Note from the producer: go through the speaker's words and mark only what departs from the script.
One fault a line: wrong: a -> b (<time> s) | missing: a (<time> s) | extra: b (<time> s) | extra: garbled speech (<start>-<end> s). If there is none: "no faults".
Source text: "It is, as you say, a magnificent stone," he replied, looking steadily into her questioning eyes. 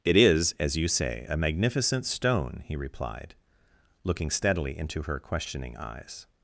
no faults